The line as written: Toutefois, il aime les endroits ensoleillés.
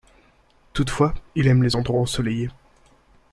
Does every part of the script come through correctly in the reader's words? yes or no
yes